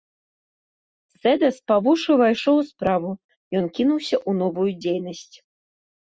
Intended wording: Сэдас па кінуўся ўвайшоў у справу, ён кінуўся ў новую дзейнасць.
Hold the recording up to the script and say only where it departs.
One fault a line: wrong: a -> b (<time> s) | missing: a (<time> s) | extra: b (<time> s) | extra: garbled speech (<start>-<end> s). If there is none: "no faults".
wrong: кінуўся -> вушы (1.9 s)